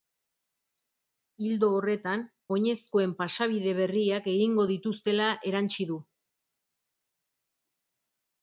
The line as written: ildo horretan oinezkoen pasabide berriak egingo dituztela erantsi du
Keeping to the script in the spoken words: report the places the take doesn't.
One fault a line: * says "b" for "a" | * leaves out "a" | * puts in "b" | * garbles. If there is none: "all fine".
all fine